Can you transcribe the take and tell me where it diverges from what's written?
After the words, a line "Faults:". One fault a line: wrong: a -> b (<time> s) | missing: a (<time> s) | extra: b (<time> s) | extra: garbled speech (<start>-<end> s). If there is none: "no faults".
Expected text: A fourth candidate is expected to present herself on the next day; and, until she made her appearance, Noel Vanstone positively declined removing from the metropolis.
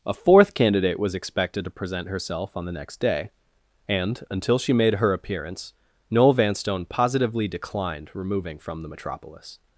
A fourth candidate was expected to present herself on the next day; and, until she made her appearance, Noel Vanstone positively declined removing from the metropolis.
Faults:
wrong: is -> was (1.0 s)